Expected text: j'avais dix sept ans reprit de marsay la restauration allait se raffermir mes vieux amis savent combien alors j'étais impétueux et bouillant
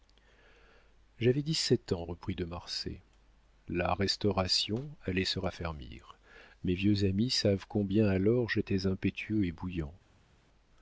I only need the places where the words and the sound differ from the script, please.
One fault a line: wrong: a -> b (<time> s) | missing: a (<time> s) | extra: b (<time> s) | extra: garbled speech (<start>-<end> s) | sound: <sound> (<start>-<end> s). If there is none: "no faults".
no faults